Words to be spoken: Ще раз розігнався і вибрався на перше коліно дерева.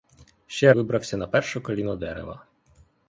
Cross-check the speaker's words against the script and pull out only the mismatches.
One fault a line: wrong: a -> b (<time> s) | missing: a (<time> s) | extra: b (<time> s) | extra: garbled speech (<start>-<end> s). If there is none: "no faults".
missing: раз розігнався і (0.7 s)